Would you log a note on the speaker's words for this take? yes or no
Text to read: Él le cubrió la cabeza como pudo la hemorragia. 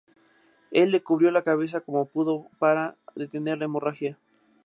yes